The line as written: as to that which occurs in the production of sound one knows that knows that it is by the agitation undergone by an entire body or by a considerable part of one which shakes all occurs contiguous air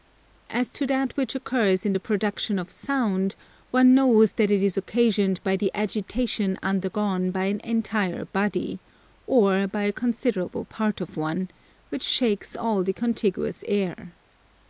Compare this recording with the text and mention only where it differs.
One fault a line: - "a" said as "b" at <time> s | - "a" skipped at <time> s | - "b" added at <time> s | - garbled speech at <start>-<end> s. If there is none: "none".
- "knows that" skipped at 4.5 s
- "occasioned" added at 4.8 s
- "occurs" said as "the" at 12.8 s